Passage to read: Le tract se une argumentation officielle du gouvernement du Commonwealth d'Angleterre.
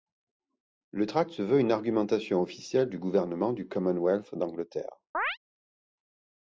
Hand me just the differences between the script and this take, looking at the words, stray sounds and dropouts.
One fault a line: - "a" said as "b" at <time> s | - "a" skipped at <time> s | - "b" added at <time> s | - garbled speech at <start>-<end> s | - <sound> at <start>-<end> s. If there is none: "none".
- "veut" added at 1.4 s
- chirp at 5.1-5.4 s